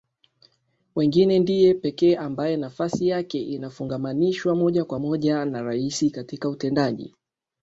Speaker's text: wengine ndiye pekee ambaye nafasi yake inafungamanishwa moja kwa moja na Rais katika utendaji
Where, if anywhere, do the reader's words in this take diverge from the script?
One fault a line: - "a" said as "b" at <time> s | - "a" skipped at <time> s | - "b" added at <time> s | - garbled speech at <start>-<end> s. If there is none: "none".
none